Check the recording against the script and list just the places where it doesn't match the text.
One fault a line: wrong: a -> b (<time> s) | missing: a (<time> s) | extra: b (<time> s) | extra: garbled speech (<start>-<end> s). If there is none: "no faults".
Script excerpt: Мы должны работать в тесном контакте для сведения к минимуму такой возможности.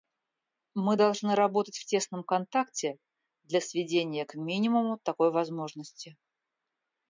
no faults